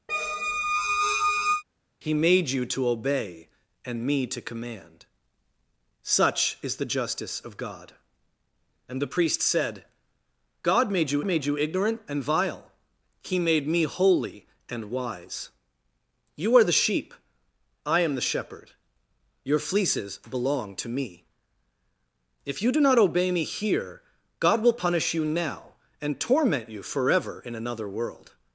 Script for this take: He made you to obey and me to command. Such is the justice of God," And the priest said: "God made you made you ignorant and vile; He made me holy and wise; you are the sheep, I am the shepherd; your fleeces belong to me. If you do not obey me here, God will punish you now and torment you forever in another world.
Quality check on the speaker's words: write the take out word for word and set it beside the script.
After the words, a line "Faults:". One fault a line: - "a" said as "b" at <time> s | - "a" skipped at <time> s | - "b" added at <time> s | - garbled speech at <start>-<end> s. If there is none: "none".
He made you to obey and me to command. Such is the justice of God," And the priest said: "God made you made you ignorant and vile; He made me holy and wise; you are the sheep, I am the shepherd; your fleeces belong to me. If you do not obey me here, God will punish you now and torment you forever in another world.
Faults:
none